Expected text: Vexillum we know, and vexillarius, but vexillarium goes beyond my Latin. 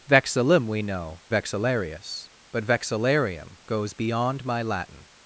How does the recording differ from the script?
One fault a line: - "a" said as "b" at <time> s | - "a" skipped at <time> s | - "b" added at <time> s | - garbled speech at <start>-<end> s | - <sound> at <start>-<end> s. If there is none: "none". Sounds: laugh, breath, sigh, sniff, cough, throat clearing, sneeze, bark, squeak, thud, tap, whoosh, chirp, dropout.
- "and" skipped at 1.2 s